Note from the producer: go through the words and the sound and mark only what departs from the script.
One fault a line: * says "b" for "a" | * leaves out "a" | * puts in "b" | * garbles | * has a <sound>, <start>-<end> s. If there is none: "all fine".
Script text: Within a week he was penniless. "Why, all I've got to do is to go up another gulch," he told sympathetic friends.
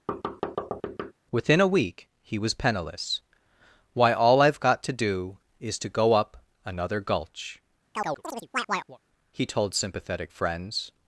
* has a thud, 0.1-1.1 s
* has a chirp, 7.9-9.0 s